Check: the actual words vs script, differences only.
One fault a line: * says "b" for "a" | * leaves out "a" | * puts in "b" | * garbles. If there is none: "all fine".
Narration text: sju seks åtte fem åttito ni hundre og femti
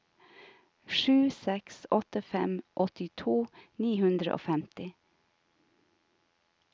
all fine